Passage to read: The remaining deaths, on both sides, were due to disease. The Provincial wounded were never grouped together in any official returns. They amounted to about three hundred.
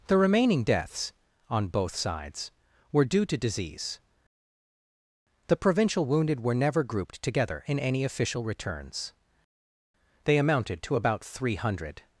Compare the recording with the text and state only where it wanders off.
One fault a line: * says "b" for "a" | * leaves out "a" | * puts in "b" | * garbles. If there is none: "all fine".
all fine